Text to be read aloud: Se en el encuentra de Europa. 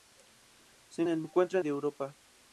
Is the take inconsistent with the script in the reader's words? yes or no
no